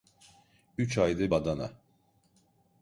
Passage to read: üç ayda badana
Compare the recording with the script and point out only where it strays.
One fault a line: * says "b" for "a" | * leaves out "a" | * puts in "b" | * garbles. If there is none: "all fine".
all fine